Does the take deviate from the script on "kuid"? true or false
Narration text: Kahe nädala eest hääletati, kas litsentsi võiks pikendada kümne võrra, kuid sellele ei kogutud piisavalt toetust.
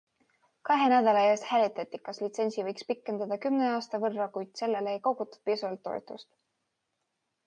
false